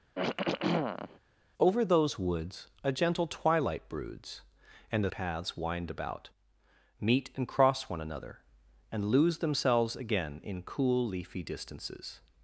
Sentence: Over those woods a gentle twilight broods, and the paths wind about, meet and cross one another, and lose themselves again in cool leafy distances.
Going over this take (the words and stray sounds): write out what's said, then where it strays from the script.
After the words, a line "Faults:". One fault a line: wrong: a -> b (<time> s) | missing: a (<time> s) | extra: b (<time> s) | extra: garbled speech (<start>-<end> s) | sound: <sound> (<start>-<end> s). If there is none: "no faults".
Over those woods a gentle twilight broods, and the paths wind about, meet and cross one another, and lose themselves again in cool leafy distances.
Faults:
sound: throat clearing (0.2-1.2 s)